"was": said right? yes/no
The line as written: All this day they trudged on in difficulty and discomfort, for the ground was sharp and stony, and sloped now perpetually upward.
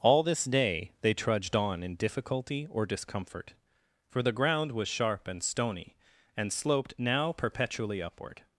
yes